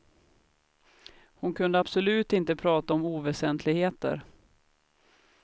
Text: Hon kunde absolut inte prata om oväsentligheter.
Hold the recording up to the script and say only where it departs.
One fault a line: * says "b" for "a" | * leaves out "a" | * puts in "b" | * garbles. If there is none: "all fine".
all fine